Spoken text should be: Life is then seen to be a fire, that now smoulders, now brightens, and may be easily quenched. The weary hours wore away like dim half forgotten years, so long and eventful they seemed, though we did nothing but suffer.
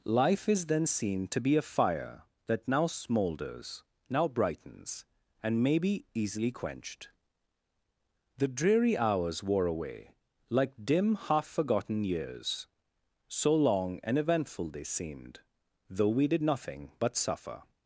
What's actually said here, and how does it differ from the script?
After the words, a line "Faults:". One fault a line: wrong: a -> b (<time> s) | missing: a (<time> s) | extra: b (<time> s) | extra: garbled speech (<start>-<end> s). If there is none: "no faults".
Life is then seen to be a fire, that now smoulders, now brightens, and may be easily quenched. The dreary hours wore away like dim half forgotten years, so long and eventful they seemed, though we did nothing but suffer.
Faults:
wrong: weary -> dreary (8.5 s)